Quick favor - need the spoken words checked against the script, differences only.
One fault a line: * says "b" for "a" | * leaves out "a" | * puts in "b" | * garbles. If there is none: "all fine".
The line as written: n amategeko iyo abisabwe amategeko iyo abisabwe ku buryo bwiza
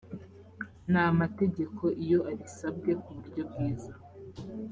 * leaves out "amategeko iyo abisabwe"